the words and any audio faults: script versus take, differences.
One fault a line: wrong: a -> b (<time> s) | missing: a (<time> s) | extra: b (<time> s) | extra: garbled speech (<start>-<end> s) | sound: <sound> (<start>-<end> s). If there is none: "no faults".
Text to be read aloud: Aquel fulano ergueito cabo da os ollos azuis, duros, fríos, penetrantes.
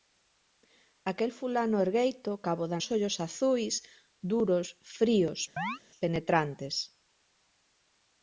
sound: chirp (5.6-5.8 s)